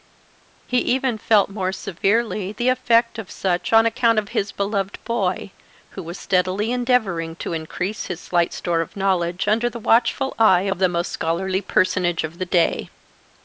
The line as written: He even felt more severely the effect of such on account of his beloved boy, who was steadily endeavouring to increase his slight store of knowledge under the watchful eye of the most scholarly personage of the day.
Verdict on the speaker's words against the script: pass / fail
pass